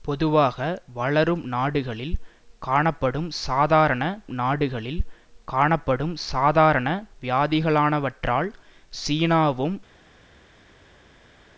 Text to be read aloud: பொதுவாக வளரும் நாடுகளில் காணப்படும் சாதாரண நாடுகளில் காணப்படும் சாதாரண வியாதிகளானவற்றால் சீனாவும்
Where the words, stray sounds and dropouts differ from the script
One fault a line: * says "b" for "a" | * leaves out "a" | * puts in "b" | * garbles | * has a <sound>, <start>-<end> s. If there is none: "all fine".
all fine